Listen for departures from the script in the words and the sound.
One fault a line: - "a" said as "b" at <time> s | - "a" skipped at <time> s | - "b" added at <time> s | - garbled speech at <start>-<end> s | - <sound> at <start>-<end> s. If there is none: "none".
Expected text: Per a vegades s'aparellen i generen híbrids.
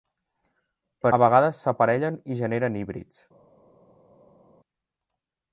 none